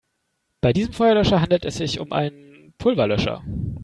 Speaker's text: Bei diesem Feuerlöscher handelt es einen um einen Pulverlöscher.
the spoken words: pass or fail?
fail